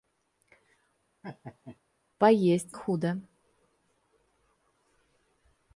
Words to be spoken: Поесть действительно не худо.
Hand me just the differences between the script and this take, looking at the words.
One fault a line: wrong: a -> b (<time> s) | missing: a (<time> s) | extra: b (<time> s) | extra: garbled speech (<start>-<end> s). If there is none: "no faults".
missing: действительно не (2.8 s)